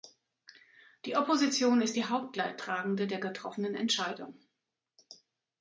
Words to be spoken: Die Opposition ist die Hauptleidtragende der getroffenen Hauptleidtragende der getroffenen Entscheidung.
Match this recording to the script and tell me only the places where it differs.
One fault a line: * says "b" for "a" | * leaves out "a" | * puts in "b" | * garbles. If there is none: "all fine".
* leaves out "Hauptleidtragende der getroffenen"